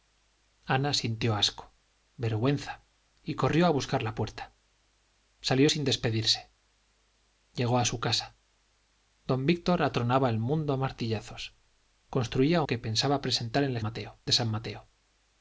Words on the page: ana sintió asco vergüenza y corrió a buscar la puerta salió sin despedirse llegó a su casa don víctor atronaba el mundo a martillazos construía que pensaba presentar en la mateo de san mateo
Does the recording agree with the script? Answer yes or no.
yes